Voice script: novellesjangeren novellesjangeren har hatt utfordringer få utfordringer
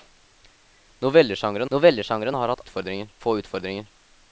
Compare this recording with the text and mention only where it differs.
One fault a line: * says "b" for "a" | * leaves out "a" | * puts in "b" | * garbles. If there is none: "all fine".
all fine